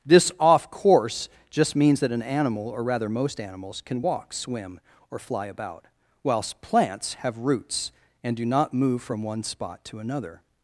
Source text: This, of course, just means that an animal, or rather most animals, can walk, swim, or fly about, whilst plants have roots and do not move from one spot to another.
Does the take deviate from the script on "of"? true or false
true